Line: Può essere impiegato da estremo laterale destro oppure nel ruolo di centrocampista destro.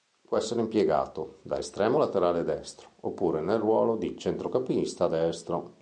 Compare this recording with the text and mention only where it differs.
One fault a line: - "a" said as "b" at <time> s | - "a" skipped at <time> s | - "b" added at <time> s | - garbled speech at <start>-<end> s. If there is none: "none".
none